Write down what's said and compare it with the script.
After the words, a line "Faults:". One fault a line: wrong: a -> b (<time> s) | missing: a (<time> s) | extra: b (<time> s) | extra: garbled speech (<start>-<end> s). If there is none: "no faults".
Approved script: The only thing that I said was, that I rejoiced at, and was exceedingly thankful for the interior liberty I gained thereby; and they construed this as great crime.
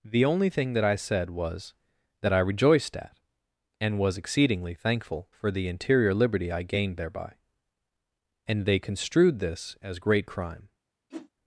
The only thing that I said was, that I rejoiced at, and was exceedingly thankful for the interior liberty I gained thereby; and they construed this as great crime.
Faults:
no faults